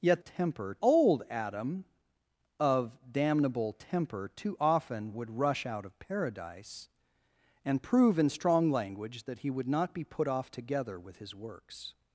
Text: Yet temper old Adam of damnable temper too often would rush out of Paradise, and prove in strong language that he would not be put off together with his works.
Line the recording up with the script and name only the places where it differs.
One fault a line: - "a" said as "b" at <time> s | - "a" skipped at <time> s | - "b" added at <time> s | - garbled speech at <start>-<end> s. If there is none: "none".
none